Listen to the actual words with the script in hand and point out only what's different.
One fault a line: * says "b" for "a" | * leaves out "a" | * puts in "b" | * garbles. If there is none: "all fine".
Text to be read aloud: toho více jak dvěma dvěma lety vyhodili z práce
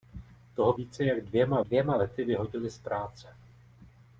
all fine